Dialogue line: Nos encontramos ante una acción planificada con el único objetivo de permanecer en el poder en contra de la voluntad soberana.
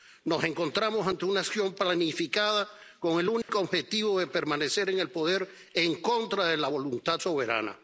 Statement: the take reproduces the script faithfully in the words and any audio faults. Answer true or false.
false